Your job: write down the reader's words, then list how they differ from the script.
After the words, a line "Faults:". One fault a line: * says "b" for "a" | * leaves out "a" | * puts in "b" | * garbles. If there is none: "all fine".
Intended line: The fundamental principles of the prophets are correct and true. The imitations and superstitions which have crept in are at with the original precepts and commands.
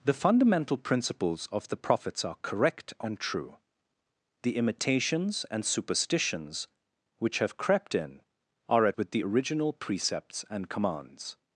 The fundamental principles of the prophets are correct and true. The imitations and superstitions which have crept in are at with the original precepts and commands.
Faults:
all fine